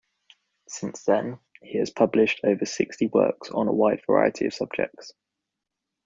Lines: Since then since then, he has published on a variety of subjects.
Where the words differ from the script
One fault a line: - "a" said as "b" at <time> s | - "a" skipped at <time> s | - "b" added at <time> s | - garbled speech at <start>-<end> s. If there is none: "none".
- "since then" skipped at 1.4 s
- "over sixty works" added at 2.4 s
- "wide" added at 3.7 s